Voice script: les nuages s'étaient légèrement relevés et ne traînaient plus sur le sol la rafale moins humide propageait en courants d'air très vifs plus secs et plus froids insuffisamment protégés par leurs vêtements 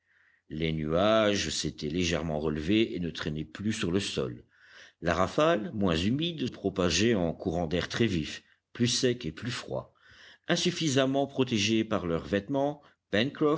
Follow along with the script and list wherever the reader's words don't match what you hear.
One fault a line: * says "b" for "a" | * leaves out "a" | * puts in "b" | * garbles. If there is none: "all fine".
all fine